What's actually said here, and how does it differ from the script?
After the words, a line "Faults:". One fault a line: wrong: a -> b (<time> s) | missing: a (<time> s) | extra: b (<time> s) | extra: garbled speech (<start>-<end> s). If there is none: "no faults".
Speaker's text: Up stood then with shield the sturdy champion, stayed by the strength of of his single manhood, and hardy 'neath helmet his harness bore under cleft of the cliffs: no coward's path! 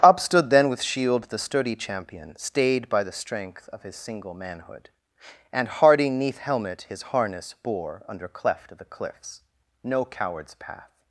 Up stood then with shield the sturdy champion, stayed by the strength of his single manhood, and hardy 'neath helmet his harness bore under cleft of the cliffs: no coward's path!
Faults:
missing: of (3.8 s)